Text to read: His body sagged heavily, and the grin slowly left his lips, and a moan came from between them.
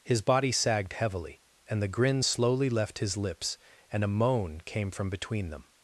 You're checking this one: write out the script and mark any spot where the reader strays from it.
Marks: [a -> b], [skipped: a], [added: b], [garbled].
His body sagged heavily, and the grin slowly left his lips, and a moan came from between them.